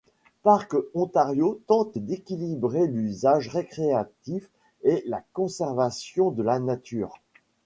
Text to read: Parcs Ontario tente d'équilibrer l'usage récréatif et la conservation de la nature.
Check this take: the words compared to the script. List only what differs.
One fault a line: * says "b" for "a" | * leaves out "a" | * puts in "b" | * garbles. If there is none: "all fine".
all fine